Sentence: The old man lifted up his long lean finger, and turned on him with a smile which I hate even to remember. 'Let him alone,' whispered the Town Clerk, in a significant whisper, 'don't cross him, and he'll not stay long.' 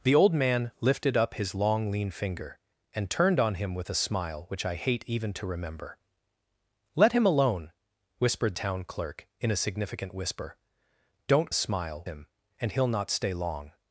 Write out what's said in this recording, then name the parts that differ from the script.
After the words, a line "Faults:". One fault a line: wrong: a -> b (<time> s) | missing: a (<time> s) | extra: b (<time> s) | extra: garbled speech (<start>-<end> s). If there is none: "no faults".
The old man lifted up his long lean finger, and turned on him with a smile which I hate even to remember. 'Let him alone,' whispered Town Clerk, in a significant whisper, 'don't smile him, and he'll not stay long.'
Faults:
missing: the (8.6 s)
wrong: cross -> smile (11.5 s)